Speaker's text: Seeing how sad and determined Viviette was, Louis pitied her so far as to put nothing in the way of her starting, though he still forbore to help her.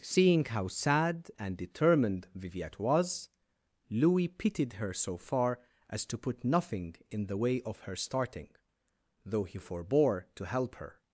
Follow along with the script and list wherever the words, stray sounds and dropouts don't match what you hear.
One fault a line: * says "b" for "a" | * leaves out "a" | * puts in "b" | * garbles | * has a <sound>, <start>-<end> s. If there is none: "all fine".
* leaves out "still"